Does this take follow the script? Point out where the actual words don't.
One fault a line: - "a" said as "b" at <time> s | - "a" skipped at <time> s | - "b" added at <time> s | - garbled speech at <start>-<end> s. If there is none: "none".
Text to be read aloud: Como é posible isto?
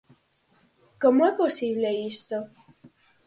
none